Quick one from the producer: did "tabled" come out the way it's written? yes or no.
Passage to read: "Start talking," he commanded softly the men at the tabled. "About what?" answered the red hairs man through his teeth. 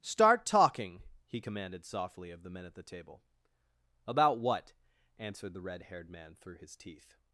no